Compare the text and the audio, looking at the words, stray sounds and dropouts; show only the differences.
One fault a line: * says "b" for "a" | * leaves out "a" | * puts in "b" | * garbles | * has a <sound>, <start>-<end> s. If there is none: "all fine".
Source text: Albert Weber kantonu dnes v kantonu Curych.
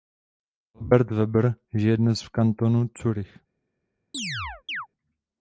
* says "žije" for "kantonu"
* has a chirp, 4.1-4.9 s